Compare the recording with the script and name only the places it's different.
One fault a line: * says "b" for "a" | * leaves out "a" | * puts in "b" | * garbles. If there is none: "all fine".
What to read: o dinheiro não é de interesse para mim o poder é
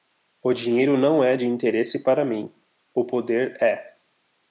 all fine